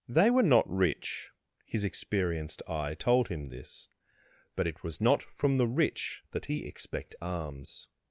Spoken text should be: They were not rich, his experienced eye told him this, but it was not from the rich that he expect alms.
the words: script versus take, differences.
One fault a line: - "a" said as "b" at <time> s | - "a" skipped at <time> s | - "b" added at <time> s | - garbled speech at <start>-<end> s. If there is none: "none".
none